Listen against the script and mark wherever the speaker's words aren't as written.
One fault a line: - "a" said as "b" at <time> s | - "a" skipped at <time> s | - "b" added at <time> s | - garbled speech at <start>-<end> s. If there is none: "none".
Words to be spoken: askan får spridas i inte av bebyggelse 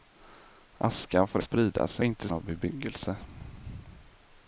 none